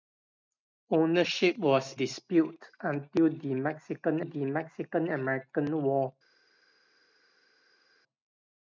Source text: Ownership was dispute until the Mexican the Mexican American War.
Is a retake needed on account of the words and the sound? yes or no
no